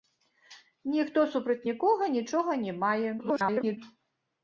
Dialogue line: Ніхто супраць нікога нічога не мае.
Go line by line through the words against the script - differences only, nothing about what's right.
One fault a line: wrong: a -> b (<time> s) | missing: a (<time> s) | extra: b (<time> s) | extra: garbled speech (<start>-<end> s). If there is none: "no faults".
extra: garbled speech (3.2-3.8 s)